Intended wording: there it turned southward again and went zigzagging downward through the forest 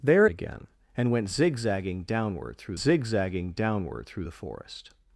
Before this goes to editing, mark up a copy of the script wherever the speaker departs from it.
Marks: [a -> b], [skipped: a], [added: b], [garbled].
there [it turned southward again and went -> again and went zigzagging downward through] zigzagging downward through the forest